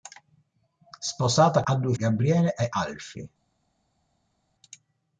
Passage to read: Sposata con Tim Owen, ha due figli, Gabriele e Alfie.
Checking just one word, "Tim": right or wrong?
wrong